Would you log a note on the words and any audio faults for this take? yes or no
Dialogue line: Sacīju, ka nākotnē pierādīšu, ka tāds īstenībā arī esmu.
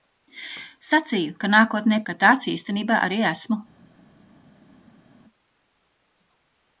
yes